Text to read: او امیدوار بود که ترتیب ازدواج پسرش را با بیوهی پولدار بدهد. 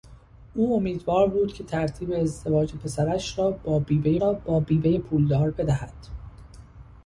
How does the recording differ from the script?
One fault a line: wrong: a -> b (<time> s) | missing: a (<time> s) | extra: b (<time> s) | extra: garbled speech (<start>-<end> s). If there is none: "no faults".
extra: را با بیوهی (4.2 s)